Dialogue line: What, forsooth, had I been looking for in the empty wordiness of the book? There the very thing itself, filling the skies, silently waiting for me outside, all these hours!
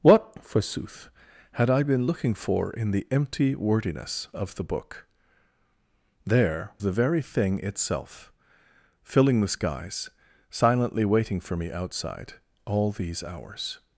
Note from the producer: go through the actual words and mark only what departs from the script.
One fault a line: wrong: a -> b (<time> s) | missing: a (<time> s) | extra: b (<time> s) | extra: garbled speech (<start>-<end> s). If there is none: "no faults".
no faults